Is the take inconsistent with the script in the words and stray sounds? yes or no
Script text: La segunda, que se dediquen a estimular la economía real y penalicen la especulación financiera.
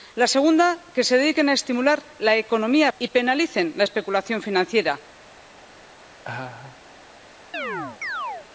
yes